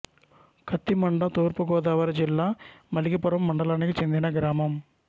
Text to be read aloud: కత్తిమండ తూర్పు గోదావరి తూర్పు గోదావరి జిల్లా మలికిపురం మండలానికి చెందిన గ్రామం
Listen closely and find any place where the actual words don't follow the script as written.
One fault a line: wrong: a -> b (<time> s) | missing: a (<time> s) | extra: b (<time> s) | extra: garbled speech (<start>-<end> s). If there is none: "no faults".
missing: తూర్పు గోదావరి (2.1 s)